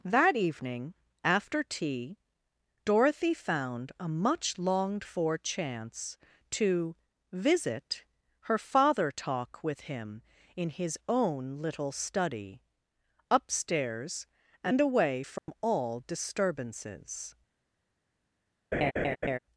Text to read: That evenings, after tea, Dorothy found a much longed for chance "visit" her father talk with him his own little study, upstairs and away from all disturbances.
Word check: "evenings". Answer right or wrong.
wrong